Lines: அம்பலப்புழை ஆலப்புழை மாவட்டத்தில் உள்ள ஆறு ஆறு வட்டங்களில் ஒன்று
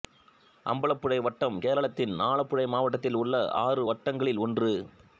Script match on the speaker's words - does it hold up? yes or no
no